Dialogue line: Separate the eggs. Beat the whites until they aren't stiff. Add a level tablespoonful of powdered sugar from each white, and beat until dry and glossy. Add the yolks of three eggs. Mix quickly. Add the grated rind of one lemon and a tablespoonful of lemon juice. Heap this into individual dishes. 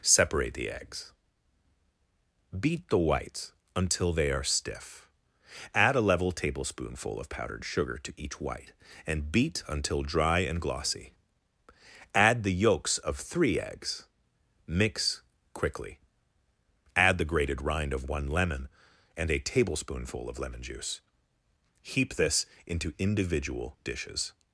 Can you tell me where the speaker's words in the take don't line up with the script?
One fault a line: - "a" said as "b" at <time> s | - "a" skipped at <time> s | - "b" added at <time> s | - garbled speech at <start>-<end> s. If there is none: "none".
- "aren't" said as "are" at 4.3 s
- "from" said as "to" at 8.0 s